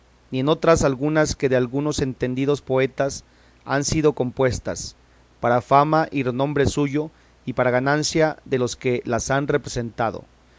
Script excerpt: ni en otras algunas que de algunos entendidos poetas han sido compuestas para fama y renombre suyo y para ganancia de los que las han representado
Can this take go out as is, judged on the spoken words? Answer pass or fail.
pass